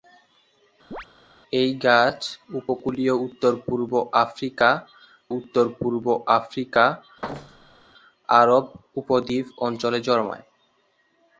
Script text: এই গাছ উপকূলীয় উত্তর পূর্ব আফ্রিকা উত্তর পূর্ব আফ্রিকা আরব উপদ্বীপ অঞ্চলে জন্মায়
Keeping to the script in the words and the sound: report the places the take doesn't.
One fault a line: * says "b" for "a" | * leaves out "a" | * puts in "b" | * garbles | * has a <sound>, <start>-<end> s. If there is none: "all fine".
* has a chirp, 0.9-1.1 s
* has a thud, 7.2-7.9 s